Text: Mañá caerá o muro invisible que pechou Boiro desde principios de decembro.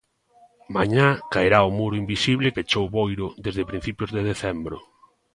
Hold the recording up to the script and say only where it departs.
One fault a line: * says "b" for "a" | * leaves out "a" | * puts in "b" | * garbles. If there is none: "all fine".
* leaves out "que"